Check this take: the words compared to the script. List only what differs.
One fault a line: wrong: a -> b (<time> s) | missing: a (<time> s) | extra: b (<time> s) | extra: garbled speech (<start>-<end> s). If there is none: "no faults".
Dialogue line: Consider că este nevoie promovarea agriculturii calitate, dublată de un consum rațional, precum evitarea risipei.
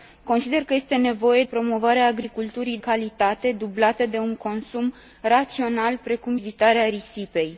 no faults